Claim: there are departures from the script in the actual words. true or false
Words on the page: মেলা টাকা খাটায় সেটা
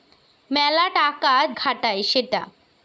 false